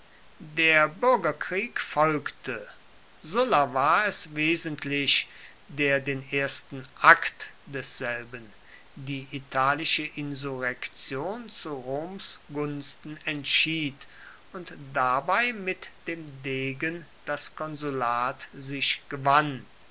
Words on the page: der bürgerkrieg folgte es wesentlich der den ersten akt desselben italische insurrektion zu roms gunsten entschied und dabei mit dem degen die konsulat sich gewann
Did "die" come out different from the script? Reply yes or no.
yes